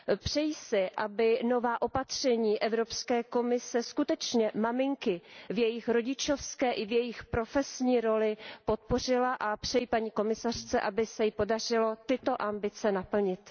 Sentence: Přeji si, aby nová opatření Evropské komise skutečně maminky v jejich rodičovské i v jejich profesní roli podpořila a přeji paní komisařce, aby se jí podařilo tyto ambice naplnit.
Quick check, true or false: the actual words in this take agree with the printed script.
true